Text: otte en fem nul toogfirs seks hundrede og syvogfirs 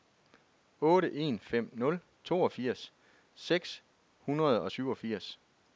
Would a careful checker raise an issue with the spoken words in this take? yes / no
no